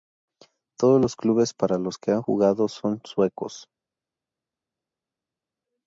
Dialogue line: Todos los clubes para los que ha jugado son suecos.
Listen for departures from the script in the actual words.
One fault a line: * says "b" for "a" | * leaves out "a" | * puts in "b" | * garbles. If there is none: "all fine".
all fine